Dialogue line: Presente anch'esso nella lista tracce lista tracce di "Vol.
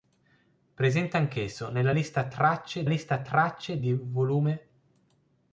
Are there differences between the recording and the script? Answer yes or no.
no